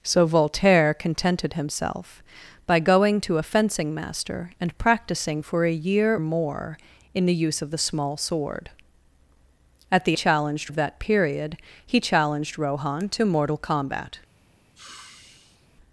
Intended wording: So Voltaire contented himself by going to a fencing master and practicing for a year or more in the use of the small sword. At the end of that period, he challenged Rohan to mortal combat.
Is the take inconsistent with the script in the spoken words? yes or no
yes